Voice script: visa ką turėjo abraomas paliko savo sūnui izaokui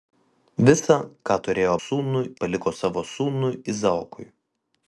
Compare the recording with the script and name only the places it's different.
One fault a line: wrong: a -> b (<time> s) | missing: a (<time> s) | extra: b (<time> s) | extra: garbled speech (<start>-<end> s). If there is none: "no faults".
wrong: abraomas -> sūnui (1.8 s)